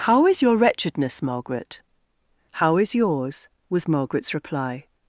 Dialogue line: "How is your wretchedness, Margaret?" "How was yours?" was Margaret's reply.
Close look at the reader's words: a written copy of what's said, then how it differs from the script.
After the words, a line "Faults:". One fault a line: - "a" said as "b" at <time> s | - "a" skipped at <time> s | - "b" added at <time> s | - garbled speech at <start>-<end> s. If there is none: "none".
"How is your wretchedness, Margaret?" "How is yours?" was Margaret's reply.
Faults:
- "was" said as "is" at 2.8 s